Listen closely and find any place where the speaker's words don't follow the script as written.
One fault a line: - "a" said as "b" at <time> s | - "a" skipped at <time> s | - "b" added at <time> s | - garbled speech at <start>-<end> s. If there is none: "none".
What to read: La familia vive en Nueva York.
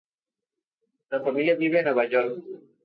none